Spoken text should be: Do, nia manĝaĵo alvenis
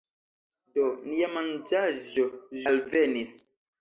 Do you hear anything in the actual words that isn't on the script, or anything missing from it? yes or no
no